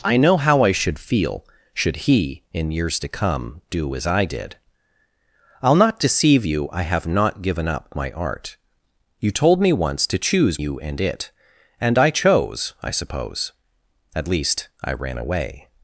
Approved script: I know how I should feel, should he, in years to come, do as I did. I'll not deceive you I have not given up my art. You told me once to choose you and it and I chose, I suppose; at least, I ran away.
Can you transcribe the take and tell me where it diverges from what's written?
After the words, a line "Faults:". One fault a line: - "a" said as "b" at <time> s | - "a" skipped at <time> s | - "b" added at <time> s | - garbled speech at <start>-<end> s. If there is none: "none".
I know how I should feel, should he, in years to come, do as I did. I'll not deceive you I have not given up my art. You told me once to choose you and it and I chose, I suppose; at least, I ran away.
Faults:
none